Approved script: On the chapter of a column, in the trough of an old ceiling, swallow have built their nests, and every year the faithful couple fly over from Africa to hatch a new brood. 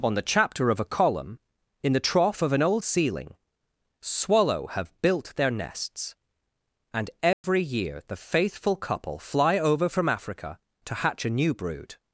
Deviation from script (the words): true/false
false